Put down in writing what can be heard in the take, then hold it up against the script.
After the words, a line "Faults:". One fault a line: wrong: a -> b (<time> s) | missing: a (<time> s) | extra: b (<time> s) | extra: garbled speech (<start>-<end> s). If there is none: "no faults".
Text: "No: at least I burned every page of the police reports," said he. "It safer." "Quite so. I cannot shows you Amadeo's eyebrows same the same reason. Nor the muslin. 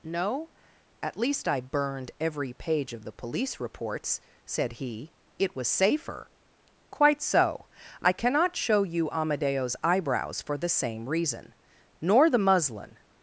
"No: at least I burned every page of the police reports," said he. "It was safer." "Quite so. I cannot show you Amadeo's eyebrows for the same reason. Nor the muslin.
Faults:
extra: was (5.5 s)
wrong: shows -> show (8.6 s)
wrong: same -> for (10.4 s)